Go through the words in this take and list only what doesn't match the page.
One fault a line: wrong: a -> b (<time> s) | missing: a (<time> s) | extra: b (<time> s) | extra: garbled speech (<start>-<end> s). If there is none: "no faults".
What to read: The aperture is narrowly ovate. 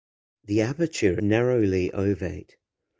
missing: is (1.2 s)